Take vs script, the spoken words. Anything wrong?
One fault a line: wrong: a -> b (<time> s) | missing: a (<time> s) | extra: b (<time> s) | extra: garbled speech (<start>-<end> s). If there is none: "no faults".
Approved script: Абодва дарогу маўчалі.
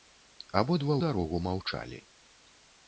no faults